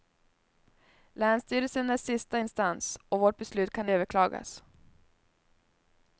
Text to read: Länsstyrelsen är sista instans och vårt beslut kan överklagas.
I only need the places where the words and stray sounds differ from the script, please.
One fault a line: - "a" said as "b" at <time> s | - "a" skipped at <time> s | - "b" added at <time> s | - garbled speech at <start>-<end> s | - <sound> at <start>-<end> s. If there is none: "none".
none